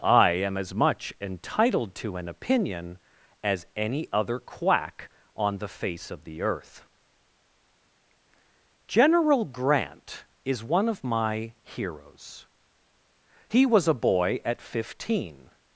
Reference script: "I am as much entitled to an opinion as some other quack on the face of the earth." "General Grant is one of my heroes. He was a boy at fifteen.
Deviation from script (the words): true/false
true